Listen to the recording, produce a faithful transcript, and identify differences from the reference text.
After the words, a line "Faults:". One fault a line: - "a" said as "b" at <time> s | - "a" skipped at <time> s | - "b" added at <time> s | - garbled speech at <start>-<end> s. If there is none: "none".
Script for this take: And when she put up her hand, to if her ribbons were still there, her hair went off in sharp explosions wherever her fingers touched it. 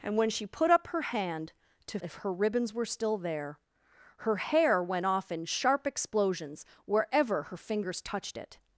And when she put up her hand, to if her ribbons were still there, her hair went off in sharp explosions wherever her fingers touched it.
Faults:
none